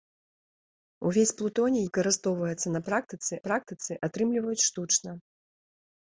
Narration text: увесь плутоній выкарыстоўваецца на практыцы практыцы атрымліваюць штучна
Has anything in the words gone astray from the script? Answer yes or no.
no